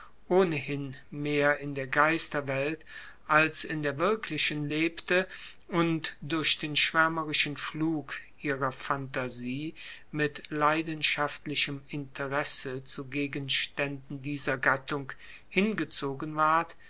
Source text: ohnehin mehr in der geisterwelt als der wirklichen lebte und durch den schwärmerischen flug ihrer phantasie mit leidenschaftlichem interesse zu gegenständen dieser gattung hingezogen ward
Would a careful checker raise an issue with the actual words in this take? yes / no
yes